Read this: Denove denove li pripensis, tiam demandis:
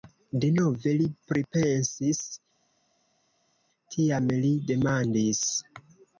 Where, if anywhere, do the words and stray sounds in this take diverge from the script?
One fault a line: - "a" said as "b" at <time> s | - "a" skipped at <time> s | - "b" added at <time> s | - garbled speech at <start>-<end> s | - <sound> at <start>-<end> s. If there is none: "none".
- "denove" skipped at 0.9 s
- "li" added at 4.5 s